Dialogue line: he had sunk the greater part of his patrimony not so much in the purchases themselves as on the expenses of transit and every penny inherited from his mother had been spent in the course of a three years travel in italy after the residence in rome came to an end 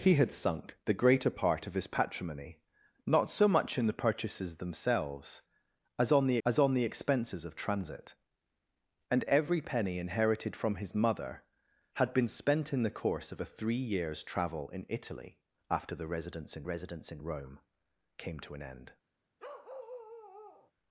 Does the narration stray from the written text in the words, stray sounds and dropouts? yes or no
yes